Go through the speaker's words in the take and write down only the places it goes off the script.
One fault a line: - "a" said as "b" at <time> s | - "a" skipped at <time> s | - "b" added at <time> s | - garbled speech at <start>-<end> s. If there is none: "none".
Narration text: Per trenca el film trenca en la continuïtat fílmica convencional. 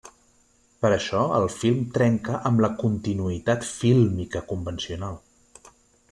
- "trenca" said as "això" at 0.9 s
- "en" said as "amb" at 2.5 s